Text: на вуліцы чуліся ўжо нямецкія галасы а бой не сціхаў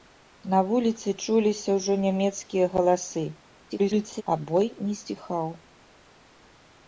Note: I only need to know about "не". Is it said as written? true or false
true